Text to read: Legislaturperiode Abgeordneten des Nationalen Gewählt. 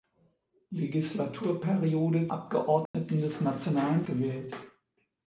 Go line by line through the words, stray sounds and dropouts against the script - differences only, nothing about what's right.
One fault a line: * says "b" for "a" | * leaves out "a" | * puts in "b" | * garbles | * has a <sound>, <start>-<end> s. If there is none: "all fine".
* has a dropout, 2.9-2.9 s